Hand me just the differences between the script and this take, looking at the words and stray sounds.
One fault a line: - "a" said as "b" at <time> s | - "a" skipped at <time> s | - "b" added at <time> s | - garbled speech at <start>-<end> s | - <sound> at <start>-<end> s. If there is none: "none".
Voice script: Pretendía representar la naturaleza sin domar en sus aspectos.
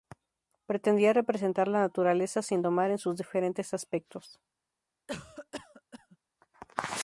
- "diferentes" added at 3.2 s
- cough at 5.1-6.2 s